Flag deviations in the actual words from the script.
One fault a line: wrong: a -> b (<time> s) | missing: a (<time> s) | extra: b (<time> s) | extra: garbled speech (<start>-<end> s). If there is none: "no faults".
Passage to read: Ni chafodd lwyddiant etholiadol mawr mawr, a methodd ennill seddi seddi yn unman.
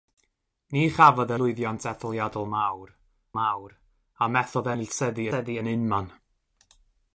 no faults